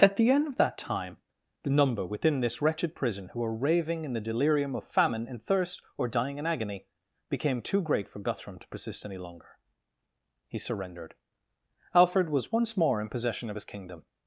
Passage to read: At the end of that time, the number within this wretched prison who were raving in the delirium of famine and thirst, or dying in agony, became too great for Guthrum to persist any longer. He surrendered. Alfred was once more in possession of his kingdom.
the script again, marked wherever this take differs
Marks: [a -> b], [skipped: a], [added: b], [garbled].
At the end of that time, the number within this wretched prison who were raving in the delirium of famine and thirst, or dying in agony, became too great for Guthrum to persist any longer. He surrendered. Alfred was once more in possession of his kingdom.